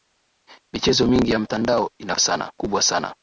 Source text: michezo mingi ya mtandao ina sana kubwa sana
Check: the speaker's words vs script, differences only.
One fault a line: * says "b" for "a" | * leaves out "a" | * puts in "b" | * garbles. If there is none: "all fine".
all fine